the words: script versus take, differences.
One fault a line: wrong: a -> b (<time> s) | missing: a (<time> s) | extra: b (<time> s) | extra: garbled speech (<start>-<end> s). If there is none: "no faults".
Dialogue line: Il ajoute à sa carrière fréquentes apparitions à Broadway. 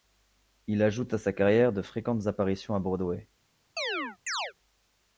extra: de (1.7 s)